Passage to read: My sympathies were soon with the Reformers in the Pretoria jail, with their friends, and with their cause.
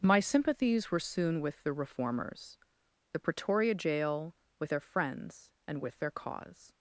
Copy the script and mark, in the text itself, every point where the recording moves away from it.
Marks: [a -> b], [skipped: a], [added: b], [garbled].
My sympathies were soon with the Reformers [skipped: in] the Pretoria jail, with their friends, and with their cause.